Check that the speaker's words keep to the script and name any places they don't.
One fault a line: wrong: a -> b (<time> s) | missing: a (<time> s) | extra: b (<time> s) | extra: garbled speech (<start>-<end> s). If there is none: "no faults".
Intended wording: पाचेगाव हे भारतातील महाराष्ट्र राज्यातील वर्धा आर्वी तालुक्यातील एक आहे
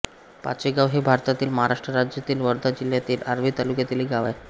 extra: जिल्ह्यातील (2.7 s)
extra: गाव (4.1 s)